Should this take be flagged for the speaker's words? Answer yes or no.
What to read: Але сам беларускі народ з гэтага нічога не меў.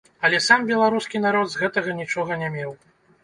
no